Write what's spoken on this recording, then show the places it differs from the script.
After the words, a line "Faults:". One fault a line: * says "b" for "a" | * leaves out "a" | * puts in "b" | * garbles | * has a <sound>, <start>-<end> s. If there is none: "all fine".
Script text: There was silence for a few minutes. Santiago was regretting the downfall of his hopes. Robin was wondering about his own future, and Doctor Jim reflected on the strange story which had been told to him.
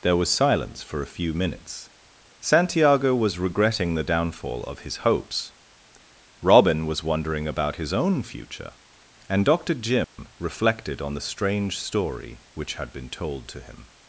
There was silence for a few minutes. Santiago was regretting the downfall of his hopes. Robin was wondering about his own future, and Doctor Jim reflected on the strange story which had been told to him.
Faults:
* has a dropout, 10.0-10.2 s